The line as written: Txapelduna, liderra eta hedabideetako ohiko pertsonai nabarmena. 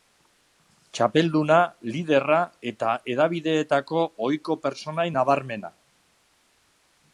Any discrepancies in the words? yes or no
no